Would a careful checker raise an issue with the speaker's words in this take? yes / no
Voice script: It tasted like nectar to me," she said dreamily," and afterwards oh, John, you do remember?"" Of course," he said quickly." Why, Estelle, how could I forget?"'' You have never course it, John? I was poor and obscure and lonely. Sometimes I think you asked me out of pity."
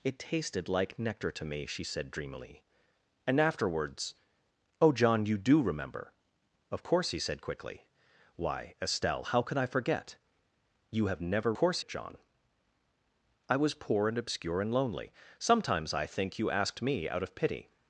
no